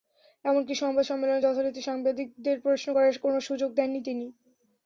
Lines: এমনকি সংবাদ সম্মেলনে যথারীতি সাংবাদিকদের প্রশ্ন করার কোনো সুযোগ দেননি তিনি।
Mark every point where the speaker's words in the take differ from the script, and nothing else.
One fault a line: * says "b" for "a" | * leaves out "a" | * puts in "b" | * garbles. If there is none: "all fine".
all fine